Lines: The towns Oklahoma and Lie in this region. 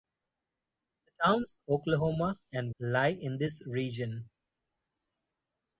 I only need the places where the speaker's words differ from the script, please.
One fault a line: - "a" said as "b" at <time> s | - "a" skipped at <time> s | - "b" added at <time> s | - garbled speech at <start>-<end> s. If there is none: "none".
none